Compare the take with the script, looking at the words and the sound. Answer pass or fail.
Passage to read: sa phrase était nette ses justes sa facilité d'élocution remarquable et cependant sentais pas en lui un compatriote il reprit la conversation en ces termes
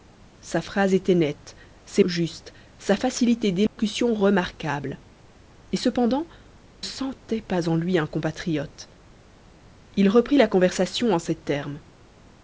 fail